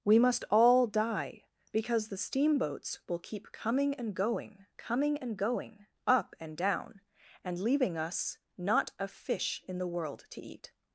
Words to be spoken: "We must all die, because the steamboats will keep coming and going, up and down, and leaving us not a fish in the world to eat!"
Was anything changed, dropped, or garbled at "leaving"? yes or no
no